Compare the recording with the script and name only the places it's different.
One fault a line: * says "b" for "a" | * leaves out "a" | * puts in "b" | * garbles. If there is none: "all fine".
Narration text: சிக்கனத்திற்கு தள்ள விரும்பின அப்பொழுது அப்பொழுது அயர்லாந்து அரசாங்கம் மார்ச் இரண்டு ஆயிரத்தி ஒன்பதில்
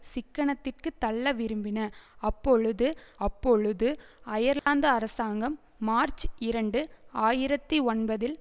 all fine